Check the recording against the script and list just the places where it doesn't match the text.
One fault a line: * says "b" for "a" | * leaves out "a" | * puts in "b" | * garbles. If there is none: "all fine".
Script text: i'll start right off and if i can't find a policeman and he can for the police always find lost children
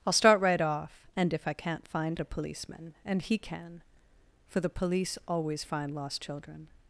all fine